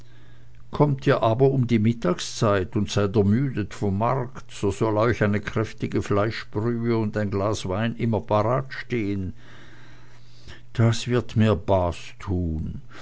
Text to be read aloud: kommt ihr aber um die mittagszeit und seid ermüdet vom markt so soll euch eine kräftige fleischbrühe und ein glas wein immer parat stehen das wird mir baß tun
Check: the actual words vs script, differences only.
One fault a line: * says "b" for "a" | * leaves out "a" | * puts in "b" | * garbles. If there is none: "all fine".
all fine